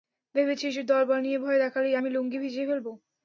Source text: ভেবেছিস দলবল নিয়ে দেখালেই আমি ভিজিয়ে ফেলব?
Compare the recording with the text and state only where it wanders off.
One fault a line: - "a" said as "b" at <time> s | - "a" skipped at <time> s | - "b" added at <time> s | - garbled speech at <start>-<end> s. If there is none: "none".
- "ভয়" added at 1.4 s
- "লুঙ্গি" added at 2.1 s